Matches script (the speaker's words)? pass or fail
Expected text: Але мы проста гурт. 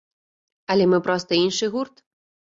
fail